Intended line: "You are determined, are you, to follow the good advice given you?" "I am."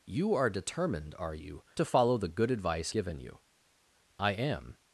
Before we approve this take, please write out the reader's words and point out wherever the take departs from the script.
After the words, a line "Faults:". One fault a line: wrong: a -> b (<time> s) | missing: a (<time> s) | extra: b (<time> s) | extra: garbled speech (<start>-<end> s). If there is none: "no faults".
"You are determined, are you, to follow the good advice given you?" "I am."
Faults:
no faults